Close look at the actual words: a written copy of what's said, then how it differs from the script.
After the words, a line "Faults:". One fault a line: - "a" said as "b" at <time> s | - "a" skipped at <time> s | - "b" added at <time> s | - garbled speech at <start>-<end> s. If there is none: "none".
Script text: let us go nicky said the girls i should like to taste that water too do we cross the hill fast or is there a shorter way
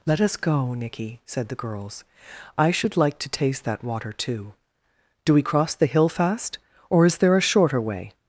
let us go nicky said the girls i should like to taste that water too do we cross the hill fast or is there a shorter way
Faults:
none